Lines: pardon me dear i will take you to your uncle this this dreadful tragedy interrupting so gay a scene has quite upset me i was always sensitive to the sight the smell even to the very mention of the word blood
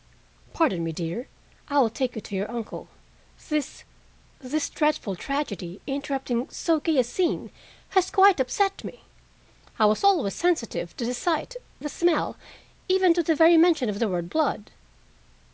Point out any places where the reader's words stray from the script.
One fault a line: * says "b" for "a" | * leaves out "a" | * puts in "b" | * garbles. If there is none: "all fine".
all fine